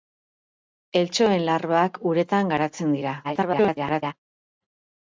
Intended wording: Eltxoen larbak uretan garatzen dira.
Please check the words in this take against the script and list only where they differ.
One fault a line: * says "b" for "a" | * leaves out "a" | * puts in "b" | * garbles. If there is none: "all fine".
* garbles